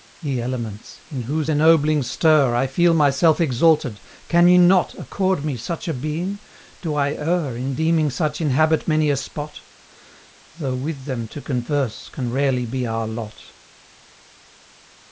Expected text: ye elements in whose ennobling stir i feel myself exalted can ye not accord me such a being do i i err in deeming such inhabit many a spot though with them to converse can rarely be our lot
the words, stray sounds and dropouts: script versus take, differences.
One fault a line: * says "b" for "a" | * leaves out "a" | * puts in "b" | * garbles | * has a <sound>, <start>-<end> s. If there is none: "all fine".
* leaves out "i"